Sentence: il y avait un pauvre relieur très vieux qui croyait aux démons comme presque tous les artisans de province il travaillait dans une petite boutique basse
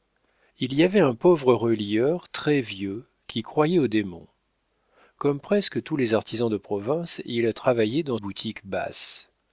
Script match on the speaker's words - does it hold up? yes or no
no